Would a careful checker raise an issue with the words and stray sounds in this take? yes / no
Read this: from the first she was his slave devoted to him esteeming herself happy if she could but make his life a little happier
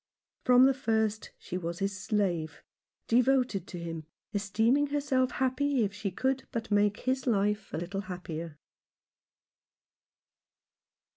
no